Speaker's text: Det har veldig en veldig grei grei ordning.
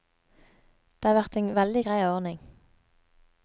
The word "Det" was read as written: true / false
true